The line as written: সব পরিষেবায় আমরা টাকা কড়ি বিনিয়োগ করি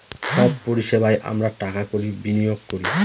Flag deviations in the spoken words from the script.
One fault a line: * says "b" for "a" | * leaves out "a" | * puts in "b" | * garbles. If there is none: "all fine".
all fine